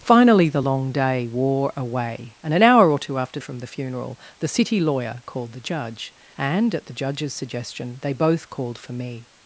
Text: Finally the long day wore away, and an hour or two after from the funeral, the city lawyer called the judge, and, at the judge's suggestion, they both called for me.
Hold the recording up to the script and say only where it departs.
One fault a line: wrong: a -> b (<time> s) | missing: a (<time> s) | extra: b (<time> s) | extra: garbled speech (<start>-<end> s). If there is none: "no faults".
no faults